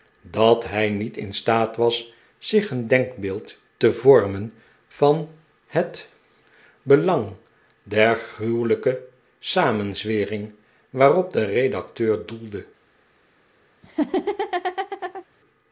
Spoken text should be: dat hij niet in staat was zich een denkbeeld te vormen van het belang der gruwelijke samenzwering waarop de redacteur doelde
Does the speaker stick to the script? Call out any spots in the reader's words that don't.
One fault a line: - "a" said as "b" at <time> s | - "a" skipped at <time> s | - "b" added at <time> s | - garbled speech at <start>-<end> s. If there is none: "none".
none